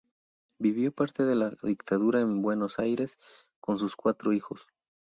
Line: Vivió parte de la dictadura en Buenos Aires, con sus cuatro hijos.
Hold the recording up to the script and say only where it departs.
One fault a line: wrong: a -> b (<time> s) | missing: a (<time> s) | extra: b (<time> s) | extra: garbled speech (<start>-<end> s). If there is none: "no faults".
no faults